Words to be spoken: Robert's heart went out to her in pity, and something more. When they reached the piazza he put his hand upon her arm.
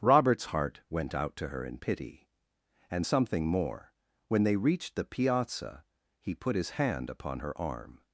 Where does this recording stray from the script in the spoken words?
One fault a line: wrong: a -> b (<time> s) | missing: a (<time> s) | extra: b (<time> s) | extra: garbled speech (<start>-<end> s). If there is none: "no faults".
no faults